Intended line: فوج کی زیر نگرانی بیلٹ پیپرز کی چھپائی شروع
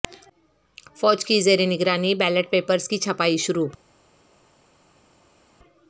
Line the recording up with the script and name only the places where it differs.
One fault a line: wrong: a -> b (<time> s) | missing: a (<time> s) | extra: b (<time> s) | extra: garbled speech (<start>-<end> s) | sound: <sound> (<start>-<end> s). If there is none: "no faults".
no faults